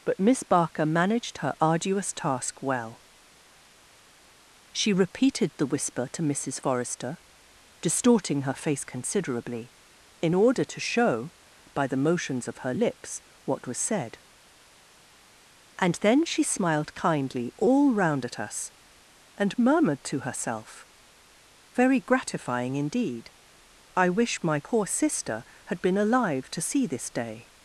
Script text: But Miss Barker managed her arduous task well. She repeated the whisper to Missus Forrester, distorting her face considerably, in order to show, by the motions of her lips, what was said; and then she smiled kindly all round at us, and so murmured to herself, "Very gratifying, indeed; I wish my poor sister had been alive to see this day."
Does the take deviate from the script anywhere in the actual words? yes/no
yes